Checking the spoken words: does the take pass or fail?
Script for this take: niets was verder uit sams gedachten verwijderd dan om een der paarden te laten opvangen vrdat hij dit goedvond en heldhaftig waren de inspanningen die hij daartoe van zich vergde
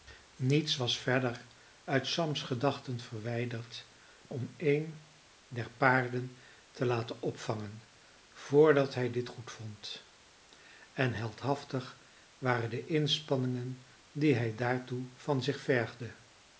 fail